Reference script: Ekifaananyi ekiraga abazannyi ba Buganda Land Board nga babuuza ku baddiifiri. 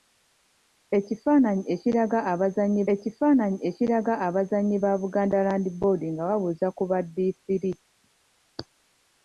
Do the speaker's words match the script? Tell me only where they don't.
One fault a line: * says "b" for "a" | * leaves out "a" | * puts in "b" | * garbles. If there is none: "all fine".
* puts in "ekifaananyi ekiraga abazannyi"